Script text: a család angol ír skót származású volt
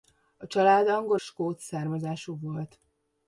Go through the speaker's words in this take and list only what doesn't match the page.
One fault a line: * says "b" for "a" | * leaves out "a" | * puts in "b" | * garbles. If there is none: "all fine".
* leaves out "ír"